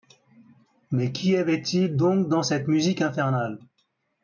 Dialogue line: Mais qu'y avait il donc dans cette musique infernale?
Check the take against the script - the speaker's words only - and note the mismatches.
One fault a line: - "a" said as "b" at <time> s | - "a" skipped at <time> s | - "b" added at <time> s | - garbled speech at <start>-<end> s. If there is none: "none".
none